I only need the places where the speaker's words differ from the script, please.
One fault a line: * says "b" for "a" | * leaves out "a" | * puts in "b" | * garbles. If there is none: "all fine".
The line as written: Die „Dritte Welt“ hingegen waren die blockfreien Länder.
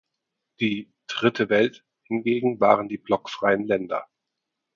all fine